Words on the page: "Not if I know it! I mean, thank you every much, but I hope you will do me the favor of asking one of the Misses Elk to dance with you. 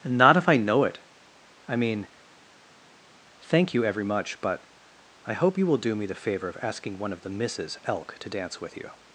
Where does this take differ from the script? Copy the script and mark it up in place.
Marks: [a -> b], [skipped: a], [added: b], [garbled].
"Not if I know it! I mean, thank you every much, but I hope you will do me the favor of asking one of the Misses Elk to dance with you.